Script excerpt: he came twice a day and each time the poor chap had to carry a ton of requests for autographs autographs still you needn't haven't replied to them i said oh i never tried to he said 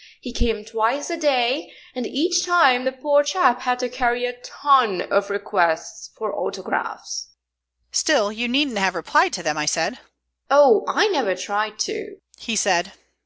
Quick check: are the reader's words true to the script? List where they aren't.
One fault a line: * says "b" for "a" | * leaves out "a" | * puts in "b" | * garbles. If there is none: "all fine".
* leaves out "autographs"
* says "have" for "haven't"